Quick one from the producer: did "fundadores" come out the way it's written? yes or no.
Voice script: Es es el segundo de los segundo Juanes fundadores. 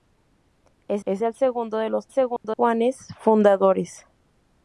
yes